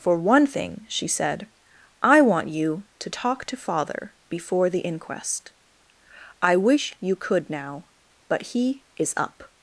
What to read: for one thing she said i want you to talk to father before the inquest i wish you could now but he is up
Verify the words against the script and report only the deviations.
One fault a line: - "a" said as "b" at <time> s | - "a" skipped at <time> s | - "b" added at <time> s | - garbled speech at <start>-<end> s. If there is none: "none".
none